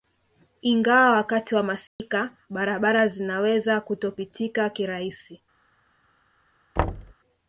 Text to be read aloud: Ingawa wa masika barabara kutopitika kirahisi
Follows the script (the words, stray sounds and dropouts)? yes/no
no